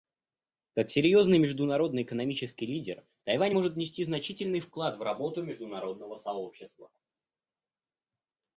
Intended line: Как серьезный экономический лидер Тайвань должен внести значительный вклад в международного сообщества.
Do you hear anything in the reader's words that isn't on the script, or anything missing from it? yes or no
yes